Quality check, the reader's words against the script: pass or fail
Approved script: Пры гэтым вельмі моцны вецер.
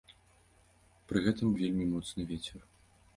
pass